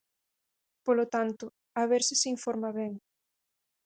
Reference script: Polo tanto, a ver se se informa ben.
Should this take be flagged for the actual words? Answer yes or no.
no